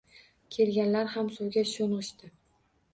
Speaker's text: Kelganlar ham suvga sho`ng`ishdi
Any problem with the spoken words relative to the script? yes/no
no